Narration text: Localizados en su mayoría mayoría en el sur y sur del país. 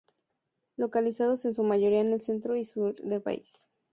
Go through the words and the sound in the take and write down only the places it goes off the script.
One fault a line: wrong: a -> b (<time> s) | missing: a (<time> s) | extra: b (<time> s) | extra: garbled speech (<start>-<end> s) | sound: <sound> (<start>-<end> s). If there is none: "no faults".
missing: mayoría (2.0 s)
wrong: sur -> centro (2.2 s)